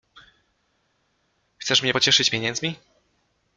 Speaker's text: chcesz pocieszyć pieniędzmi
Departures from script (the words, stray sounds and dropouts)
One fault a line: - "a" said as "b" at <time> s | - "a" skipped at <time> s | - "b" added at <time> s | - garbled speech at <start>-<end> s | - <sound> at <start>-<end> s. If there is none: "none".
- "mnie" added at 1.8 s